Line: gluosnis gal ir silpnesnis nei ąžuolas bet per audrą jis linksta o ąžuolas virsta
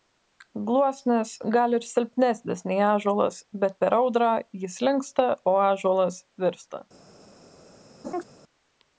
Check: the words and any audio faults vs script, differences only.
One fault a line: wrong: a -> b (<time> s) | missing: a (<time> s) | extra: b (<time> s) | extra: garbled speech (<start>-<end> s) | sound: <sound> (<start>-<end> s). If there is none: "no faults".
sound: laugh (8.0-8.2 s)